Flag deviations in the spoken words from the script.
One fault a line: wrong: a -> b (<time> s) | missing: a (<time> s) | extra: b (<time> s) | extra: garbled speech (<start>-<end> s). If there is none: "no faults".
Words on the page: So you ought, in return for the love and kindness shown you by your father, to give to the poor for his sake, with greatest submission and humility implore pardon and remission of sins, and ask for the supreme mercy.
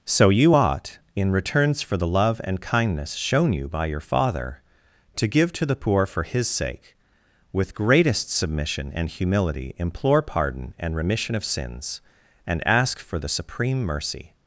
wrong: return -> returns (1.3 s)